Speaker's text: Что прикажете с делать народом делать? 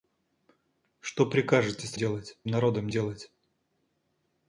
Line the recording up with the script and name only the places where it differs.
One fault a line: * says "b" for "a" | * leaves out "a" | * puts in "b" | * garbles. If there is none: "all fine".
all fine